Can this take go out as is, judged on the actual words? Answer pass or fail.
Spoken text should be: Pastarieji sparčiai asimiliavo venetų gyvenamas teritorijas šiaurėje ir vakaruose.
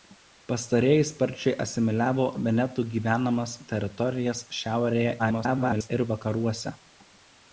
fail